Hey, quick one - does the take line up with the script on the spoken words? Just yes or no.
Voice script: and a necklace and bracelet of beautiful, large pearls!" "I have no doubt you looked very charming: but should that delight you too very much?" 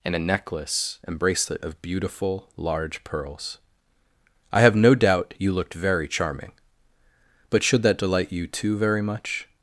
yes